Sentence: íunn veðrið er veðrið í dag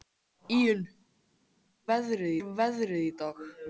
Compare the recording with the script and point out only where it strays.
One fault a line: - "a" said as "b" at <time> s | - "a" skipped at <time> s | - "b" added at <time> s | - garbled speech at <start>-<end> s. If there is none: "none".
none